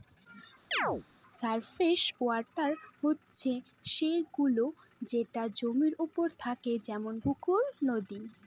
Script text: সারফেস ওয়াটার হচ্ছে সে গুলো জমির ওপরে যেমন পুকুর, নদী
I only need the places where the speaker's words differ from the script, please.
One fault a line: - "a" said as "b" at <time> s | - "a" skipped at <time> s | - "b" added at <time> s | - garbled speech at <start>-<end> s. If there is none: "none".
- "যেটা" added at 5.0 s
- "থাকে" added at 6.4 s